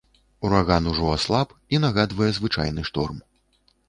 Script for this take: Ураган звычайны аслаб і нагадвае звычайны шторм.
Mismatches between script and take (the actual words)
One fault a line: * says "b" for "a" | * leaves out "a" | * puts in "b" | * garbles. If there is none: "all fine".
* says "ужо" for "звычайны"